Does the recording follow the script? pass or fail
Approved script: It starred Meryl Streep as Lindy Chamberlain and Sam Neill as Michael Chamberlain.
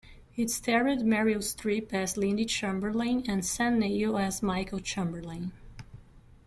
pass